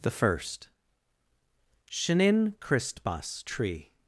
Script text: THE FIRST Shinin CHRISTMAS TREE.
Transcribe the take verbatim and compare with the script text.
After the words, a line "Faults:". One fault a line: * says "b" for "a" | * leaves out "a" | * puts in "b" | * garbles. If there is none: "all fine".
THE FIRST Shinin CHRISTMAS TREE.
Faults:
all fine